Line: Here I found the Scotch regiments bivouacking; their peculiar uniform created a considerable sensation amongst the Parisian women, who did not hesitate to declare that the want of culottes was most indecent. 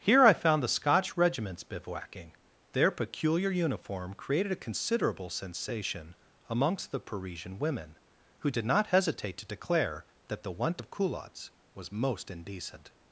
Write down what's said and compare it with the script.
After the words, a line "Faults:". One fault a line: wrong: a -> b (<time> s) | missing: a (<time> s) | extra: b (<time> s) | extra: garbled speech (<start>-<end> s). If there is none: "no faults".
Here I found the Scotch regiments bivouacking; their peculiar uniform created a considerable sensation amongst the Parisian women, who did not hesitate to declare that the want of culottes was most indecent.
Faults:
no faults